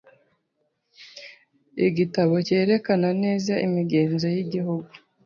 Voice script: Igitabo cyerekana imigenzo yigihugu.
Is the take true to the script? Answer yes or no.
no